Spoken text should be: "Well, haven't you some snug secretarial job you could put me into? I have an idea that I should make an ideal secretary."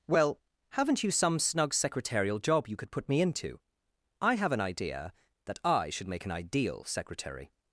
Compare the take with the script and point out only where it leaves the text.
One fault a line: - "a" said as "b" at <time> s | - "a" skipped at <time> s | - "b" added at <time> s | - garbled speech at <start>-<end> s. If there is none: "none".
none